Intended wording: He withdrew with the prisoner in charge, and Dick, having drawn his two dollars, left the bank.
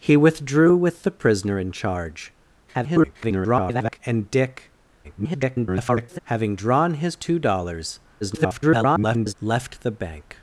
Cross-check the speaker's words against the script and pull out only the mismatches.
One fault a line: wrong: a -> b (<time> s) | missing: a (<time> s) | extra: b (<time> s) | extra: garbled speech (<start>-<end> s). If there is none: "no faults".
extra: garbled speech (2.7-4.0 s)
extra: garbled speech (5.0-6.2 s)
extra: garbled speech (8.2-9.3 s)